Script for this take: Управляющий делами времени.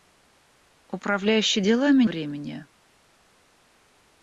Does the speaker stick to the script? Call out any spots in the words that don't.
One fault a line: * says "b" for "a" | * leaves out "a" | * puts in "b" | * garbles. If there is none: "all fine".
all fine